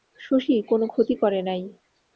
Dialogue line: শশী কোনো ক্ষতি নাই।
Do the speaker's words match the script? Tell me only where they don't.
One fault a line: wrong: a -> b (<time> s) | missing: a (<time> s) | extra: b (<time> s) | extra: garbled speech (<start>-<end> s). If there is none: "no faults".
extra: করে (1.2 s)